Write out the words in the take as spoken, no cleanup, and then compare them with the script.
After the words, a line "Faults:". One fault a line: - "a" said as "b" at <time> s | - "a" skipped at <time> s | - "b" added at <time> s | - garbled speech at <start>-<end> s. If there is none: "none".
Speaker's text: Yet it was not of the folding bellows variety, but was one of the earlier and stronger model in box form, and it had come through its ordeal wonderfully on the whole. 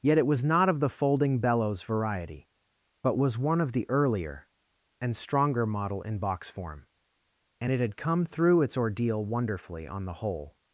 Yet it was not of the folding bellows variety, but was one of the earlier and stronger model in box form, and it had come through its ordeal wonderfully on the whole.
Faults:
none